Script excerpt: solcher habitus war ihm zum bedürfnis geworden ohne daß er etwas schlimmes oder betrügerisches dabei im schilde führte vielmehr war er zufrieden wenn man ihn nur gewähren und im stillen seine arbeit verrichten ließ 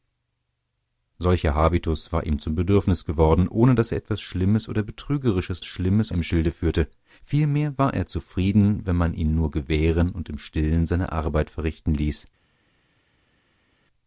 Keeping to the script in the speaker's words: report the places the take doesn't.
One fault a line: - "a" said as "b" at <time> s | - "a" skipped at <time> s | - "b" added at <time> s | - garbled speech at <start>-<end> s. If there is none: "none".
- "dabei" said as "schlimmes" at 5.6 s